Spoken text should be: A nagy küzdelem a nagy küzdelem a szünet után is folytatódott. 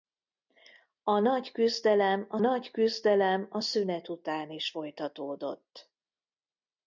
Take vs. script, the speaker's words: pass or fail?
pass